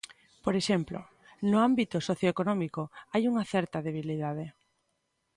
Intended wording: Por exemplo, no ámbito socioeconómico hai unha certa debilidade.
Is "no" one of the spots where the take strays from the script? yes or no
no